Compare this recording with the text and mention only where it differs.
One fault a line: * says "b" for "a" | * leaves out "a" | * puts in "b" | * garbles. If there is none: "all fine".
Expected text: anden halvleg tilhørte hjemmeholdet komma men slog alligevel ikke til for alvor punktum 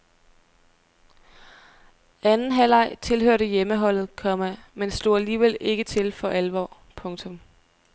all fine